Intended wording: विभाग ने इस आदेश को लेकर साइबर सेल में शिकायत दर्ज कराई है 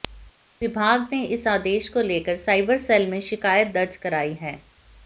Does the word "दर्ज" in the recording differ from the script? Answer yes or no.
no